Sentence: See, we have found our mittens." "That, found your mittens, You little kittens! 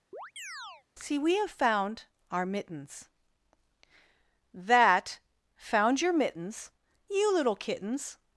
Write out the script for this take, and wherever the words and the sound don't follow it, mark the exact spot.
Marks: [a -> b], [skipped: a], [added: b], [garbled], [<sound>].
[chirp] See, we have found our mittens." "That, found your mittens, You little kittens!